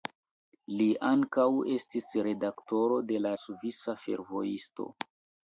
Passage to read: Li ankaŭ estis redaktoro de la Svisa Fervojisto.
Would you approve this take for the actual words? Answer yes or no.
yes